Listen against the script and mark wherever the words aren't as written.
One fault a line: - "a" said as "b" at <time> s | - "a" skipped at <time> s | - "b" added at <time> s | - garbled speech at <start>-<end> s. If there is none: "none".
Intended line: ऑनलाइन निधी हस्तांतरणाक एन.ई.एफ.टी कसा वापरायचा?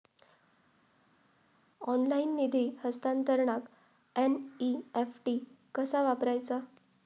none